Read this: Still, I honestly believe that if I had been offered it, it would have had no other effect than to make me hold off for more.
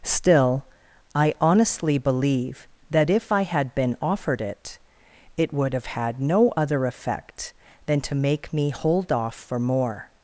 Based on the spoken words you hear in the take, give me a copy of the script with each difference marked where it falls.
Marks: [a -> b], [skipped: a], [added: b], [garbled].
Still, I honestly believe that if I had been offered it, it would have had no other effect than to make me hold off for more.